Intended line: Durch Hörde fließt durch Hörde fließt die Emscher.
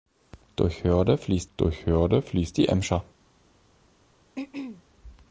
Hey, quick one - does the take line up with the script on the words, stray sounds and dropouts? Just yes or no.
no